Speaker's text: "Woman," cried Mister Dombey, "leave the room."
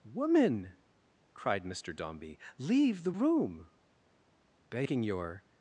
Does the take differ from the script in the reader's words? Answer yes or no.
yes